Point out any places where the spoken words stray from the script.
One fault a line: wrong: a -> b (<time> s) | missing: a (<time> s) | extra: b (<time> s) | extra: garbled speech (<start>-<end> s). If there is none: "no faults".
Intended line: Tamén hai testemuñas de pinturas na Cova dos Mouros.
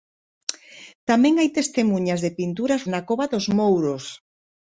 no faults